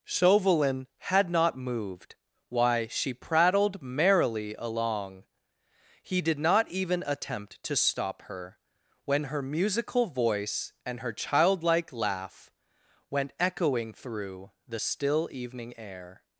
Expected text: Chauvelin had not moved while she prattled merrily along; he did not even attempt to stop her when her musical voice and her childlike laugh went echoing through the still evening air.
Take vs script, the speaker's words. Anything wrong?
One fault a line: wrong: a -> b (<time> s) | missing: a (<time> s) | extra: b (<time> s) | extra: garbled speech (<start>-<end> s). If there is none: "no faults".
wrong: while -> why (2.5 s)